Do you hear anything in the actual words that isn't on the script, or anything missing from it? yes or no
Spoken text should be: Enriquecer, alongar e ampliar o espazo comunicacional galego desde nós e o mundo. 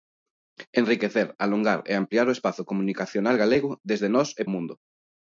no